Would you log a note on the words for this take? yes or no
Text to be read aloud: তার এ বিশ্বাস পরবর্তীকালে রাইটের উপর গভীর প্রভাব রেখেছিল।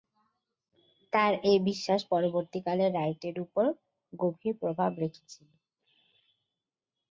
no